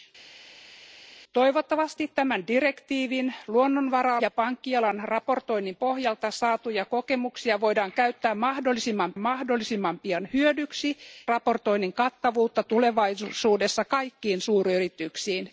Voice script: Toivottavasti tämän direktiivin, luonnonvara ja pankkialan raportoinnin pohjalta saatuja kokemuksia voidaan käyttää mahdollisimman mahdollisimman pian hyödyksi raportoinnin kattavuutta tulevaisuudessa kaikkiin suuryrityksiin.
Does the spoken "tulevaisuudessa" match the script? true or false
true